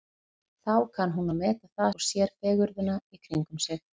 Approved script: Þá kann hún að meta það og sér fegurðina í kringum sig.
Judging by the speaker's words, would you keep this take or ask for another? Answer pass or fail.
pass